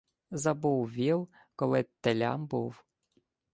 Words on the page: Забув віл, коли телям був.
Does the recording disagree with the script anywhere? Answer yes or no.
no